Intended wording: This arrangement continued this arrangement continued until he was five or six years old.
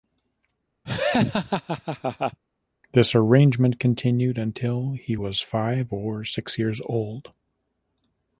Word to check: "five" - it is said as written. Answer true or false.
true